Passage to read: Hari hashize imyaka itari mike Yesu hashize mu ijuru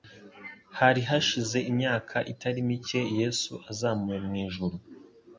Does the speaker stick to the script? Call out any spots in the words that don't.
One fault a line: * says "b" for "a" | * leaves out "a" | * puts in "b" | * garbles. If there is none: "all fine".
* says "azamuwe" for "hashize"